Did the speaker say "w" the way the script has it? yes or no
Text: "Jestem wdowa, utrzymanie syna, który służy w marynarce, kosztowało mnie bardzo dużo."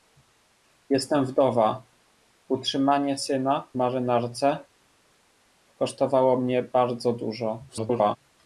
no